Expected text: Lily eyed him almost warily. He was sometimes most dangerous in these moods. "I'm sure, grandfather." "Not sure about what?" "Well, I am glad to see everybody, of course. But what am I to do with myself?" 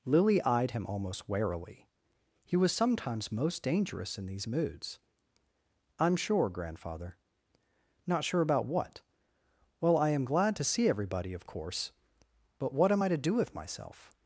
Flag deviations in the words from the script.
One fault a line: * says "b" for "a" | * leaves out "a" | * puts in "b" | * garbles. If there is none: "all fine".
all fine